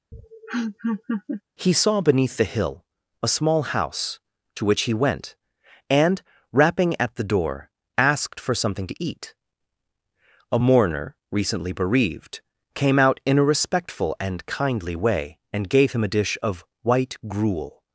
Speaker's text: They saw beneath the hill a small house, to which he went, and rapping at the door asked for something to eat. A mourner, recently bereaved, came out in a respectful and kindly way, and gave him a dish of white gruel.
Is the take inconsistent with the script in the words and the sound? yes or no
yes